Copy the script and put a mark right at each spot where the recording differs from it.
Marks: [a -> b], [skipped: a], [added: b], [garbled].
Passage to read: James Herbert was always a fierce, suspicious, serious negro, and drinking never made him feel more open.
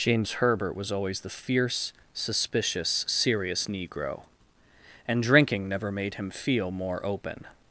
James Herbert was always [a -> the] fierce, suspicious, serious negro, and drinking never made him feel more open.